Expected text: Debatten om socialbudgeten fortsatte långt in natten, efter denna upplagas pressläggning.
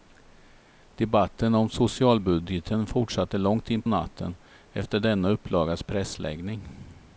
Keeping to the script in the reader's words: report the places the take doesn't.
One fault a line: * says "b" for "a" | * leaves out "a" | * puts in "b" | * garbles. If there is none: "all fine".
all fine